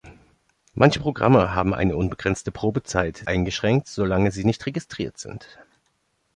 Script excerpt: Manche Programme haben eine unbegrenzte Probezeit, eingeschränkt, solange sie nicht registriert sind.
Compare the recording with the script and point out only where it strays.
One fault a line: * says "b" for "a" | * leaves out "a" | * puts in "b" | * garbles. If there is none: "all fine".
all fine